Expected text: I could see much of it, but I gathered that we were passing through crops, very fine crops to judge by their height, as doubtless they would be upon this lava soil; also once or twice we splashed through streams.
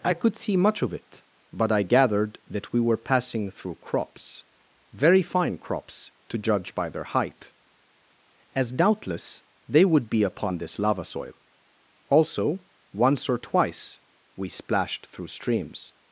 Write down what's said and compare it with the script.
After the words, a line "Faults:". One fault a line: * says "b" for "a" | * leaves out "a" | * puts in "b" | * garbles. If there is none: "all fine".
I could see much of it, but I gathered that we were passing through crops, very fine crops to judge by their height, as doubtless they would be upon this lava soil; also once or twice we splashed through streams.
Faults:
all fine